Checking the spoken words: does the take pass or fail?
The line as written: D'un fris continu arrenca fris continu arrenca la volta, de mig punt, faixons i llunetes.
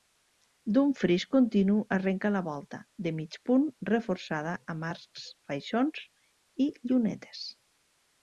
fail